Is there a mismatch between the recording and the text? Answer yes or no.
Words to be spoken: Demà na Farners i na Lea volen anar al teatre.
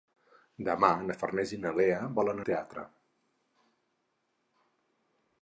yes